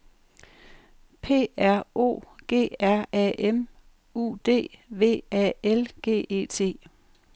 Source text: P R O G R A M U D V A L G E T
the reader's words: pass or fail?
pass